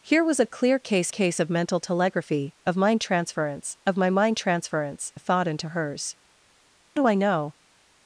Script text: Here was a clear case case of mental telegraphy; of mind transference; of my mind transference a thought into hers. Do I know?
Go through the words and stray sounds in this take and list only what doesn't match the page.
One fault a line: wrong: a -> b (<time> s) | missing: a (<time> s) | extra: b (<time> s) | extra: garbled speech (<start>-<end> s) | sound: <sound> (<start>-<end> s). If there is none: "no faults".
no faults